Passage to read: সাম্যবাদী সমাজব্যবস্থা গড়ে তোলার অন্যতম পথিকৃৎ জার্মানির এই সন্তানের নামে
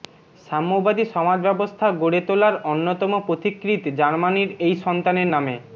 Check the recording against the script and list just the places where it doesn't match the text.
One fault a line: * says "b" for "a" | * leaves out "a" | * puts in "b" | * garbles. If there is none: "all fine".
all fine